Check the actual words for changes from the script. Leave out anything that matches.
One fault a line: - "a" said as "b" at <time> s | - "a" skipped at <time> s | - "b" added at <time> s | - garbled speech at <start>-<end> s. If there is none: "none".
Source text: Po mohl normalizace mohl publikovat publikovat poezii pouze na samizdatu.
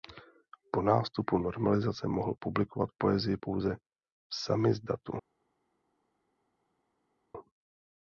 - "mohl" said as "nástupu" at 0.8 s
- "publikovat" skipped at 2.9 s
- "na" said as "v" at 3.8 s